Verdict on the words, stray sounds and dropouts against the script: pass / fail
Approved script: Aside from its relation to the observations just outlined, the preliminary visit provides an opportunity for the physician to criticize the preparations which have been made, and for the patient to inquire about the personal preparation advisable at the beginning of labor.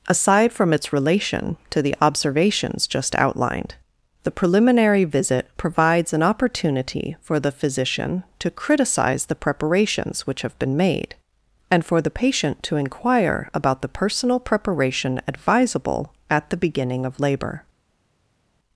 pass